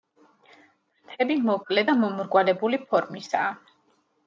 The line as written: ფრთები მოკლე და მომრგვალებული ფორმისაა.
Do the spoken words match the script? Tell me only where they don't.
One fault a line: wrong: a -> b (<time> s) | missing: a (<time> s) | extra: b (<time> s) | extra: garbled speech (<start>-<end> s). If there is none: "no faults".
no faults